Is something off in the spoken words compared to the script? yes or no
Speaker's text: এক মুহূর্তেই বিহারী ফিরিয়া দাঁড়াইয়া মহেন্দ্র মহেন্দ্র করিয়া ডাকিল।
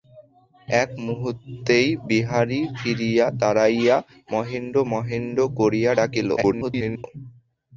yes